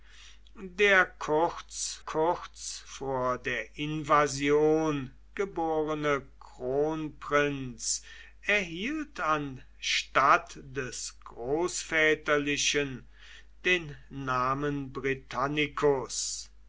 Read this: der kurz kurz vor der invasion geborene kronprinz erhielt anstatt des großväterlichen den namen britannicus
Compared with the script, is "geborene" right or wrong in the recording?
right